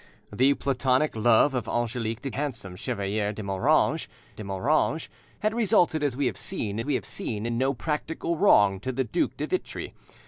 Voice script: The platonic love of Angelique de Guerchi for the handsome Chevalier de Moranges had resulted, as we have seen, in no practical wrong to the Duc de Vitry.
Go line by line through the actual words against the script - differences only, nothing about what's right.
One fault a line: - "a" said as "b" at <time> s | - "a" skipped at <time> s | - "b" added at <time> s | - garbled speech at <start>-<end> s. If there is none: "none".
- "Guerchi for the" skipped at 2.3 s
- "de Moranges" added at 4.3 s
- "we have seen" added at 6.8 s